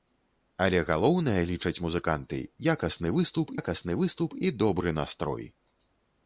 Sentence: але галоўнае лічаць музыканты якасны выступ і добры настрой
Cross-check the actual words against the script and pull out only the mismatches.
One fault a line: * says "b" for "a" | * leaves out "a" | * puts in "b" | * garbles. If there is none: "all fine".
* puts in "якасны выступ"